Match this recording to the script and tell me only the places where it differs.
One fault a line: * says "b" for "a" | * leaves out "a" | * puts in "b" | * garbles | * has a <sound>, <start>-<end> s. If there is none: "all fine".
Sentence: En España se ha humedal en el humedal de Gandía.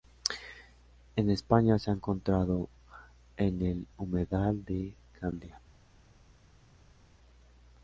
* says "encontrado" for "humedal"